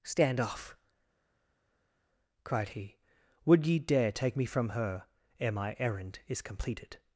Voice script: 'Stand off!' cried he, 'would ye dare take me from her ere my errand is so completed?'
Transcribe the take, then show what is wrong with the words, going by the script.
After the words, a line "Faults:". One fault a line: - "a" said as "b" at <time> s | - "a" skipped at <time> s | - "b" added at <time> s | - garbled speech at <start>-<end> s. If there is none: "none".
'Stand off!' cried he, 'would ye dare take me from her ere my errand is completed?'
Faults:
- "so" skipped at 6.4 s